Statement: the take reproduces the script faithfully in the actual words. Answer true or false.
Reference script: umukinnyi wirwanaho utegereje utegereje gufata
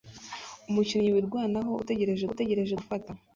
true